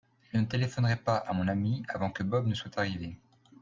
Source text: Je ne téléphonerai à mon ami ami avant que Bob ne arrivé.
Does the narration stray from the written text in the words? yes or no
yes